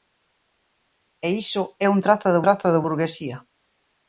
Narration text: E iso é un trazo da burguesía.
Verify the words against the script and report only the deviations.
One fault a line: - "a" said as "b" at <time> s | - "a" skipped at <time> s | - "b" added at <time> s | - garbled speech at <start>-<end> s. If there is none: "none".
- "trazo da" added at 2.4 s